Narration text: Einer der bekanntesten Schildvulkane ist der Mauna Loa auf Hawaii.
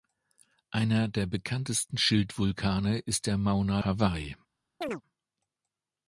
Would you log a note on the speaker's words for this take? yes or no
yes